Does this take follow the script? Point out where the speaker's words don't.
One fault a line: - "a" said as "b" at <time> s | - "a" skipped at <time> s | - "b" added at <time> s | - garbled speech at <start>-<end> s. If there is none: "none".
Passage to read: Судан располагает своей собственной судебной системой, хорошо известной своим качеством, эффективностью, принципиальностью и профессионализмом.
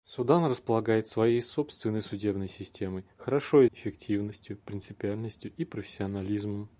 - "известной своим качеством" skipped at 3.6 s